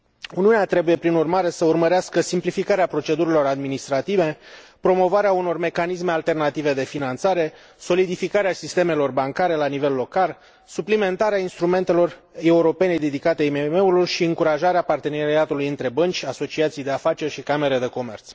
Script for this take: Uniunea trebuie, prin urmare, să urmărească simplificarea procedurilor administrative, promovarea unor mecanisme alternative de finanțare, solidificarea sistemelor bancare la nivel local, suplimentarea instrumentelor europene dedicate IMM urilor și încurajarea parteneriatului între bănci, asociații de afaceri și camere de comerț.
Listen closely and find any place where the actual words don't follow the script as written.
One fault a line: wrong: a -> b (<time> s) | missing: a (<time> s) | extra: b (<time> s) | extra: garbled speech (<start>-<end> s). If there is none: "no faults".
no faults